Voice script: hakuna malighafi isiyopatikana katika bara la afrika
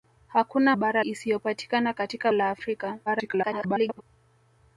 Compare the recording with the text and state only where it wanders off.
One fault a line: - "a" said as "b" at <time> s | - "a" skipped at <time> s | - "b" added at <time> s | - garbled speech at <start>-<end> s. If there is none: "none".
- "malighafi" said as "bara" at 0.7 s
- "bara" skipped at 2.3 s
- garbled speech at 3.1-4.0 s